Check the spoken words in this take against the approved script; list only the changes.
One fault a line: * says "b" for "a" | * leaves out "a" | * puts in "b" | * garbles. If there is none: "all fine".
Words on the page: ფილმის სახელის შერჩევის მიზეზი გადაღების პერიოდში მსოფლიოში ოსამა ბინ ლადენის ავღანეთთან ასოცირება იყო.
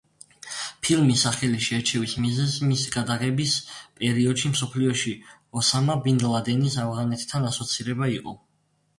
* puts in "მისი"